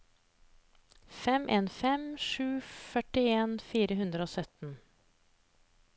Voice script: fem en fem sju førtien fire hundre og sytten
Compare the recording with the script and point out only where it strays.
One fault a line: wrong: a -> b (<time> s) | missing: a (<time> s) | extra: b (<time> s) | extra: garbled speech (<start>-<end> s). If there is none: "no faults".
no faults